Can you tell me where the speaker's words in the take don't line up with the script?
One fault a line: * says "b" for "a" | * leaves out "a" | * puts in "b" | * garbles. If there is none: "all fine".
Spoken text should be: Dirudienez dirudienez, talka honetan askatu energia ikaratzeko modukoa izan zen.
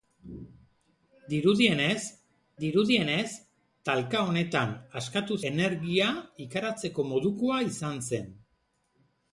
all fine